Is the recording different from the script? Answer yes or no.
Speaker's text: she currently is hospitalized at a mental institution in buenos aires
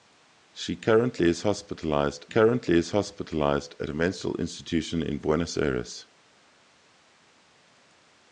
yes